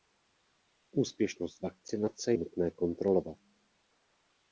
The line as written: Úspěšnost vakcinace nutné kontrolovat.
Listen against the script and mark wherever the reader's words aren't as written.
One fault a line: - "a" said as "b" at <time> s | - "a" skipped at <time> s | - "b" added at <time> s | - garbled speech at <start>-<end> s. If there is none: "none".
none